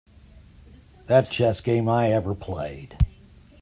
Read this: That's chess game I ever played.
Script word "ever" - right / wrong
right